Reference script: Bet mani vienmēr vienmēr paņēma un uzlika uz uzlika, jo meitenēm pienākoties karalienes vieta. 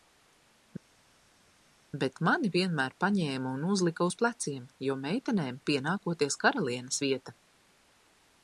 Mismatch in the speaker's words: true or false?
true